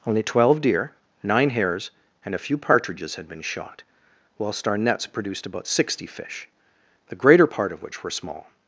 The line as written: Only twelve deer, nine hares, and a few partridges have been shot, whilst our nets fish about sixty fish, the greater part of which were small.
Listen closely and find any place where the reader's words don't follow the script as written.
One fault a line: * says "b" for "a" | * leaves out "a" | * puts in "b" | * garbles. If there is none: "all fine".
* says "had" for "have"
* says "produced" for "fish"